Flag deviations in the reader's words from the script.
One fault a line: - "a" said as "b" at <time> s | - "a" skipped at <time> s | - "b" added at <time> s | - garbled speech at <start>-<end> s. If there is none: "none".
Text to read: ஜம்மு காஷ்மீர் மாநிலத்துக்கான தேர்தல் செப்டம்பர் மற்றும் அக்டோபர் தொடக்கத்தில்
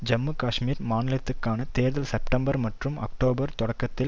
none